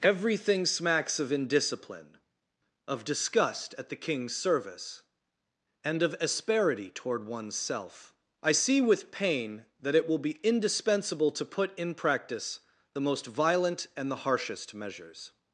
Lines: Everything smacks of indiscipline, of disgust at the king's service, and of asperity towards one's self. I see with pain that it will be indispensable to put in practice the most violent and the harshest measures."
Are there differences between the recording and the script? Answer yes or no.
yes